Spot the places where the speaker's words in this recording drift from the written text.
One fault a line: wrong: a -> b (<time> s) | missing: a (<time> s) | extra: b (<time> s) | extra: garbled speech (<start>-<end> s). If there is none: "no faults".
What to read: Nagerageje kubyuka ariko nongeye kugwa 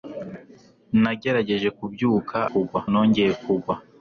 wrong: ariko -> kugwa (2.5 s)